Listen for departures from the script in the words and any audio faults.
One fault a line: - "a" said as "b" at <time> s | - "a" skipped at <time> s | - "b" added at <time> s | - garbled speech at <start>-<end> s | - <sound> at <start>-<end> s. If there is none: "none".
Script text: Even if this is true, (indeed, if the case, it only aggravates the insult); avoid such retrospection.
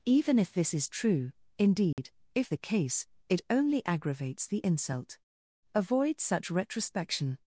- dropout at 1.9-2.0 s